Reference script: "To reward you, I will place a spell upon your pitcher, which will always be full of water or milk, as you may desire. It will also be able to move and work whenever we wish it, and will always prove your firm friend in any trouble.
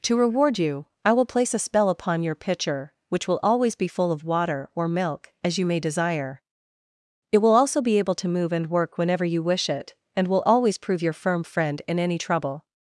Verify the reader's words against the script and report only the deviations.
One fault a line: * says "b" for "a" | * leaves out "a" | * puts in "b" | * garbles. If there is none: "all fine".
* says "you" for "we"